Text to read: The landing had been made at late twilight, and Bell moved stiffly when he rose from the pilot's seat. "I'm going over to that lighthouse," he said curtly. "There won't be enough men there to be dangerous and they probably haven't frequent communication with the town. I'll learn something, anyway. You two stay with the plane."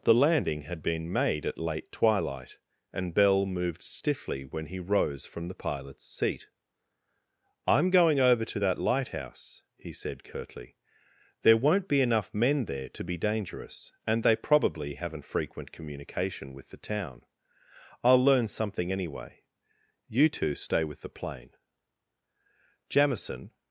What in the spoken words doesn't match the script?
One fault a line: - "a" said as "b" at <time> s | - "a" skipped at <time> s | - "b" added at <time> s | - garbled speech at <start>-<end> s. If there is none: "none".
- "Jamison" added at 22.9 s